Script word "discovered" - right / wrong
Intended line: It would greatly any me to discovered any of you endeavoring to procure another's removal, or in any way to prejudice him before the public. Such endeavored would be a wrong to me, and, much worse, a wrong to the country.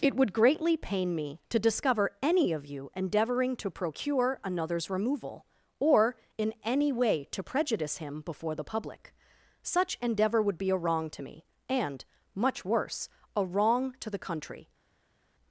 wrong